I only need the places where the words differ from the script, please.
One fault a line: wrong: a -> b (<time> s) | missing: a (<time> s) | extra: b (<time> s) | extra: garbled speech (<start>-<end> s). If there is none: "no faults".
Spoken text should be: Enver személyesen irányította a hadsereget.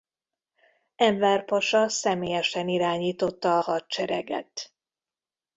extra: pasa (1.4 s)